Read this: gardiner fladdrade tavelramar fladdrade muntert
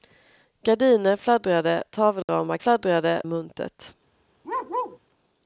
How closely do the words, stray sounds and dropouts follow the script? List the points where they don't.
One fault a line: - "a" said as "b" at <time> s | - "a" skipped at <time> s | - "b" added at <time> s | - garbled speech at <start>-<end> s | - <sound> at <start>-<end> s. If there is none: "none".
- dropout at 2.2-2.3 s
- bark at 4.4-5.0 s